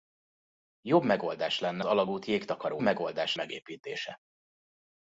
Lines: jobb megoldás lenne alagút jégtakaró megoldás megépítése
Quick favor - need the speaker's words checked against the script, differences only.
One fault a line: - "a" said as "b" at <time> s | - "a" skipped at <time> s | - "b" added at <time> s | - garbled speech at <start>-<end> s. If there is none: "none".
none